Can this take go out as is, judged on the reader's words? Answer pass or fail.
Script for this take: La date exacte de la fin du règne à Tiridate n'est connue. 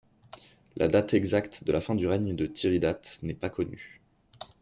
fail